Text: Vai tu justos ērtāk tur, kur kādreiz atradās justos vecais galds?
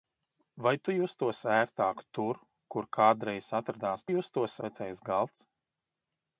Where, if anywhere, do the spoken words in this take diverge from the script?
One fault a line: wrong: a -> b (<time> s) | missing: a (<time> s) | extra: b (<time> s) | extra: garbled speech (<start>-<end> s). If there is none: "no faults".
no faults